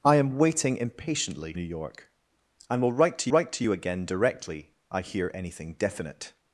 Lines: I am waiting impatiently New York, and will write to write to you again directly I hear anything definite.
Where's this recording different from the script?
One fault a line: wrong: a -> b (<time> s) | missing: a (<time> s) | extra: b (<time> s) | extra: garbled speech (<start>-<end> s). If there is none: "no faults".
no faults